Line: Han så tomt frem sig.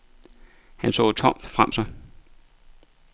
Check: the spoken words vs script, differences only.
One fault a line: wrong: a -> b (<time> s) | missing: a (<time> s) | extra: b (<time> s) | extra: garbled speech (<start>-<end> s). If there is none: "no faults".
no faults